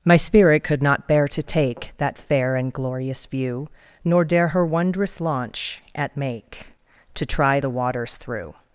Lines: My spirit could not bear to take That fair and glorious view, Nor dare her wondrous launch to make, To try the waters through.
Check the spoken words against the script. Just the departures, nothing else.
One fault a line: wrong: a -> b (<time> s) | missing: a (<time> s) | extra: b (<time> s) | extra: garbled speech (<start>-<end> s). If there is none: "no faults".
wrong: to -> at (5.9 s)